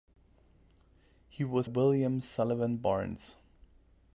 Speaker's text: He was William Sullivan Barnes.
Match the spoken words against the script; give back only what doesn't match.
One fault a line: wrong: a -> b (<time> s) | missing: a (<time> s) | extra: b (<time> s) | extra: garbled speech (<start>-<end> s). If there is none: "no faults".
no faults